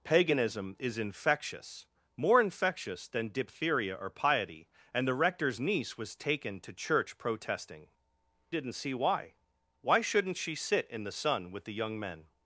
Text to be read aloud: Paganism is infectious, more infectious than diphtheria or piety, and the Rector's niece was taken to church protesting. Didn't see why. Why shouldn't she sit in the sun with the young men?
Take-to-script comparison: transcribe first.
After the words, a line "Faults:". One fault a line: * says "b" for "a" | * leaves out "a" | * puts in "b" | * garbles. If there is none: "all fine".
Paganism is infectious, more infectious than diphtheria or piety, and the Rector's niece was taken to church protesting. Didn't see why. Why shouldn't she sit in the sun with the young men?
Faults:
all fine